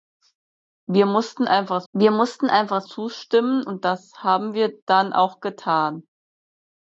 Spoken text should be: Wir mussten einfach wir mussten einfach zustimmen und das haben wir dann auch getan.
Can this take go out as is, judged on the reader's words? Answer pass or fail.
pass